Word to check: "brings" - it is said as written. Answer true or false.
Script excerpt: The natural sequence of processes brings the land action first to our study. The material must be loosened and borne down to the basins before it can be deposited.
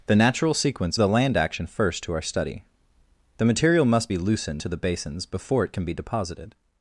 false